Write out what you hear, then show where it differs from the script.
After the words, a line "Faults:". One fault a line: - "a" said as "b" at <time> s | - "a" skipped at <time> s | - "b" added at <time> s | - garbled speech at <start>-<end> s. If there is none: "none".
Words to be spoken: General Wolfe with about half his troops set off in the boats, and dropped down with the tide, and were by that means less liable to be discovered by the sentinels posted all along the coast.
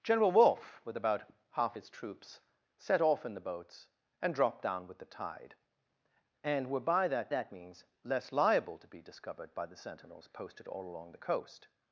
General Wolfe with about half his troops set off in the boats, and dropped down with the tide, and were by that that means less liable to be discovered by the sentinels posted all along the coast.
Faults:
- "that" added at 7.3 s